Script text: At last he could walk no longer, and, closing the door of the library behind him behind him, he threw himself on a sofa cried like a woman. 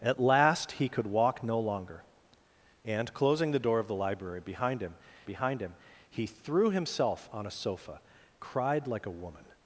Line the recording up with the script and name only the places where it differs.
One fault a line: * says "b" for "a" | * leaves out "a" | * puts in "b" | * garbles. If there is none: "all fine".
all fine